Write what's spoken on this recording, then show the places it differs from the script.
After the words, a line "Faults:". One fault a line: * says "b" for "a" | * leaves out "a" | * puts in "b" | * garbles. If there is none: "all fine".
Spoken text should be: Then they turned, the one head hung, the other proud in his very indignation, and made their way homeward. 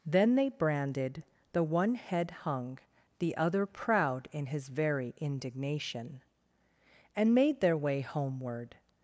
Then they branded, the one head hung, the other proud in his very indignation, and made their way homeward.
Faults:
* says "branded" for "turned"